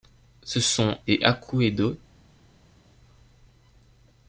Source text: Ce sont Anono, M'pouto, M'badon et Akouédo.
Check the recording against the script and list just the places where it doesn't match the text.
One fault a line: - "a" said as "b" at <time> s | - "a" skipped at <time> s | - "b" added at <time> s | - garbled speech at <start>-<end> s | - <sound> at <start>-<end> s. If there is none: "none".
- "Anono M'pouto M'badon" skipped at 1.0 s